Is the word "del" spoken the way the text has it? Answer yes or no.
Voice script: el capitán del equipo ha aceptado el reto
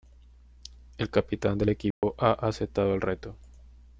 yes